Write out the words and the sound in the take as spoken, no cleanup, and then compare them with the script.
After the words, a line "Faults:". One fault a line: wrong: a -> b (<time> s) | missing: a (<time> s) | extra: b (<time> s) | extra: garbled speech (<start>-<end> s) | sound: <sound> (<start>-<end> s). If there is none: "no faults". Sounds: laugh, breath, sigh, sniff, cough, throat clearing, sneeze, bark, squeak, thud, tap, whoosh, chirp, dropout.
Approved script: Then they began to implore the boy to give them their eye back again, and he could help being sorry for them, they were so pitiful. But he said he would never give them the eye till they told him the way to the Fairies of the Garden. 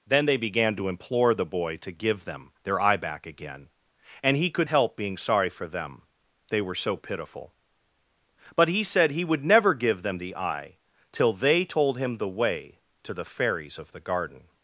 Then they began to implore the boy to give them their eye back again, and he could help being sorry for them, they were so pitiful. But he said he would never give them the eye till they told him the way to the Fairies of the Garden.
Faults:
no faults